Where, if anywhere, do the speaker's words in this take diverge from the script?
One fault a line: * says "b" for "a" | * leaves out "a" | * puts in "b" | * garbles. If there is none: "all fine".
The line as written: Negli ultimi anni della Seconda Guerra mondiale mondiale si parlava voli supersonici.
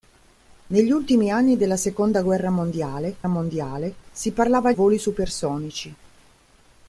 all fine